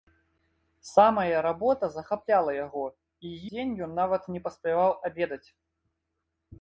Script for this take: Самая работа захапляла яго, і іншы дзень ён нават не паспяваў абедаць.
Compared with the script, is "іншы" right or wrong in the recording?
wrong